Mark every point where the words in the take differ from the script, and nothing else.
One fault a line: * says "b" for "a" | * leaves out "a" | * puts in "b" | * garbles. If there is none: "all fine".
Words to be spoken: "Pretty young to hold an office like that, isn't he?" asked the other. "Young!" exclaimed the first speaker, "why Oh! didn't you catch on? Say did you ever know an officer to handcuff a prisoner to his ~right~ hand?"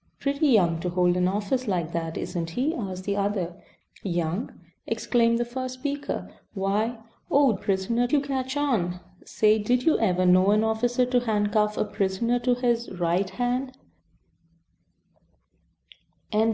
* says "prisoner" for "didn't"